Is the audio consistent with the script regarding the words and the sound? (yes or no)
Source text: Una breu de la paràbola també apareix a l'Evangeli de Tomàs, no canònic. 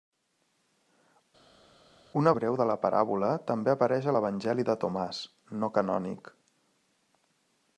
yes